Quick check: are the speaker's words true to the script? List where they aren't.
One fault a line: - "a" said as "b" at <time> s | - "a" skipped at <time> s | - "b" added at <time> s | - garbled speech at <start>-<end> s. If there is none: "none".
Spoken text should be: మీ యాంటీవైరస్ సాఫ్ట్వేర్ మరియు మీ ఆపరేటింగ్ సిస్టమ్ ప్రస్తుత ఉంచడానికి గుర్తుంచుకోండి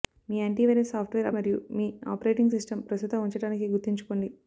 none